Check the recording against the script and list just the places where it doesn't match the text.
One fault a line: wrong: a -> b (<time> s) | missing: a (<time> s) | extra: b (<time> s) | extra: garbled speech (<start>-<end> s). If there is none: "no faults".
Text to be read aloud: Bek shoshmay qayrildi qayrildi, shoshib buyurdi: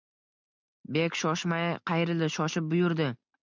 missing: qayrildi (2.3 s)